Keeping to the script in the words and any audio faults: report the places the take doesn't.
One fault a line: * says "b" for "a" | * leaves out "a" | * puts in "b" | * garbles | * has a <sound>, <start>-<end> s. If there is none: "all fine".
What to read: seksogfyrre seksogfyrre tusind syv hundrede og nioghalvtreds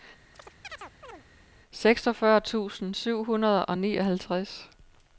* has a chirp, 0.3-1.2 s
* leaves out "seksogfyrre"